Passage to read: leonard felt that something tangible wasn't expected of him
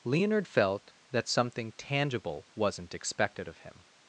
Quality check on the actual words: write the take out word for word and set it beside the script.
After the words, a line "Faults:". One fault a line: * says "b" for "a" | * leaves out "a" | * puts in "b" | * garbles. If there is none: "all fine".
leonard felt that something tangible wasn't expected of him
Faults:
all fine